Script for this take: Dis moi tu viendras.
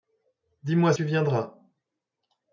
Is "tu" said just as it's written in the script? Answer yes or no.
yes